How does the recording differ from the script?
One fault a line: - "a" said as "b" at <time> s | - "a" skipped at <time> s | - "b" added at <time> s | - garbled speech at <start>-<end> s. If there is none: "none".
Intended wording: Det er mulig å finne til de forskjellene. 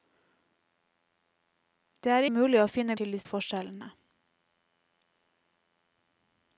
none